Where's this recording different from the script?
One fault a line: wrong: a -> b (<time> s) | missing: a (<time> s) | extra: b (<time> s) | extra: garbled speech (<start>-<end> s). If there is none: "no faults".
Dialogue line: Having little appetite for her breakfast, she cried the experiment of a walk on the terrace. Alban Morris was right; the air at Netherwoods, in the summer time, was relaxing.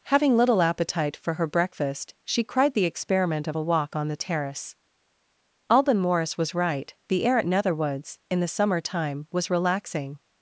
no faults